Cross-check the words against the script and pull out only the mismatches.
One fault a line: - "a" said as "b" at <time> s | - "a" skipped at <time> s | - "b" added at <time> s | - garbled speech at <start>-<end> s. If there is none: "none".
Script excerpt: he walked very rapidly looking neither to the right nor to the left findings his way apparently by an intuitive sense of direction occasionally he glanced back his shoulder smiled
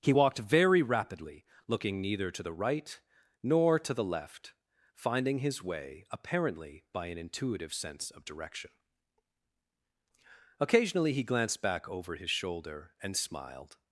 - "findings" said as "finding" at 4.9 s
- "over" added at 11.9 s
- "and" added at 13.0 s